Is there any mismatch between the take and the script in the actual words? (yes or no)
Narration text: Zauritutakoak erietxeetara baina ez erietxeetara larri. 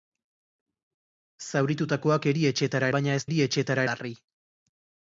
no